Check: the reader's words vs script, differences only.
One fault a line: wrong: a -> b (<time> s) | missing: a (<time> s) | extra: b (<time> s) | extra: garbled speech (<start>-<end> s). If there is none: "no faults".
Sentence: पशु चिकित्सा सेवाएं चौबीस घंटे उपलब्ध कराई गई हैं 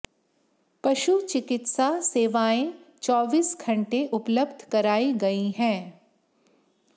no faults